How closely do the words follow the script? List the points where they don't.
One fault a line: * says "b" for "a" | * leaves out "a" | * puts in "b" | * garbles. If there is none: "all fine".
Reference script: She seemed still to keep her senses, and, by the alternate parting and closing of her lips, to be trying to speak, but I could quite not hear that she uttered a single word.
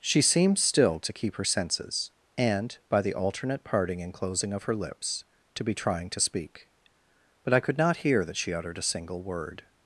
* leaves out "quite"